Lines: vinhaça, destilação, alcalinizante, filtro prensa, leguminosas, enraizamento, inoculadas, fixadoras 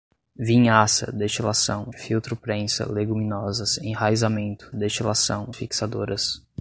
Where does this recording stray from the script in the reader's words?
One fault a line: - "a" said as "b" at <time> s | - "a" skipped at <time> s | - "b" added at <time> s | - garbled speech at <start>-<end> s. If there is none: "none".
- "alcalinizante" skipped at 1.9 s
- "inoculadas" said as "destilação" at 4.7 s